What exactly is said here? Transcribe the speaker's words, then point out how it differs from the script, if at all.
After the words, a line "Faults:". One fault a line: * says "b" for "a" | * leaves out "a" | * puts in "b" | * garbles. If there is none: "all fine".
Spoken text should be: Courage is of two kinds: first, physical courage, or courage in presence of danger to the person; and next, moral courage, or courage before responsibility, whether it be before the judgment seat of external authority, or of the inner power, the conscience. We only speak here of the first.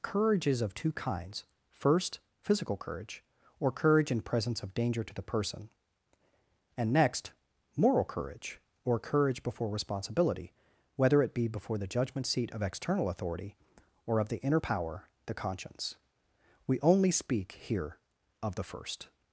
Courage is of two kinds: first, physical courage, or courage in presence of danger to the person; and next, moral courage, or courage before responsibility, whether it be before the judgment seat of external authority, or of the inner power, the conscience. We only speak here of the first.
Faults:
all fine